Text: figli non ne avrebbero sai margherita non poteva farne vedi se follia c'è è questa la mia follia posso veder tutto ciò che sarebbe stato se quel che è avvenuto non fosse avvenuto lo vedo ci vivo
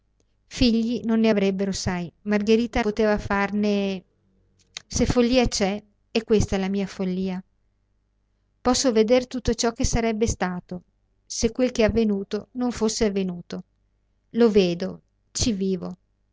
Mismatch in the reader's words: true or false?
true